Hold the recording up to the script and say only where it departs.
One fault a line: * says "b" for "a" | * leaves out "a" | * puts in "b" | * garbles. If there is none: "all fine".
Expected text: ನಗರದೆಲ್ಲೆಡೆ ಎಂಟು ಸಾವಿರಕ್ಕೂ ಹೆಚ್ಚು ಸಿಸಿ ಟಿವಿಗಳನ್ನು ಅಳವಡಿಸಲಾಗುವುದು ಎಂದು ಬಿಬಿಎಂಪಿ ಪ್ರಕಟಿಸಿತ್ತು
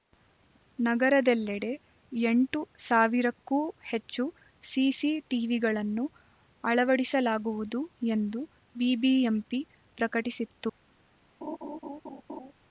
all fine